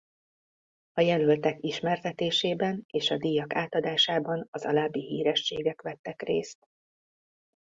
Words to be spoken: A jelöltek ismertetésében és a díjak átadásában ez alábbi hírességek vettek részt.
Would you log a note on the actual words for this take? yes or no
yes